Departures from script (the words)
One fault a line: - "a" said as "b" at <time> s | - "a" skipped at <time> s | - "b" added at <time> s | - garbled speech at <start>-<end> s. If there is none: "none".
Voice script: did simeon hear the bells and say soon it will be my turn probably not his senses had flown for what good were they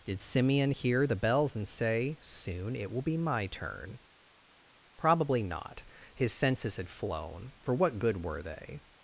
none